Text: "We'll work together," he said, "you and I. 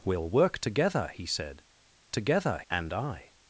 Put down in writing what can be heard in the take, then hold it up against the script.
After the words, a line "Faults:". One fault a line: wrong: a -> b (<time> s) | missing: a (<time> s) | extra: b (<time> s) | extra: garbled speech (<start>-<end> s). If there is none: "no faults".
"We'll work together," he said, "together and I.
Faults:
wrong: you -> together (2.1 s)